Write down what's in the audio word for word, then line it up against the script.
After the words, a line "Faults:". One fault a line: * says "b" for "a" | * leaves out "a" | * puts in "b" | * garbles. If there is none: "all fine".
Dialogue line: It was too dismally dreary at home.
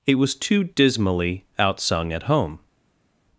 It was too dismally outsung at home.
Faults:
* says "outsung" for "dreary"